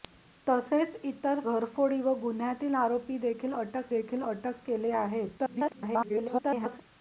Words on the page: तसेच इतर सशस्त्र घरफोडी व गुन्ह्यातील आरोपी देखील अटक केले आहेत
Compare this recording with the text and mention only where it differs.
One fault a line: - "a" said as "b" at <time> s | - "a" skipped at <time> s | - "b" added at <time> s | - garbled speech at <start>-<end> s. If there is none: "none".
- "सशस्त्र" skipped at 1.4 s
- "देखील अटक" added at 3.9 s
- garbled speech at 5.4-6.8 s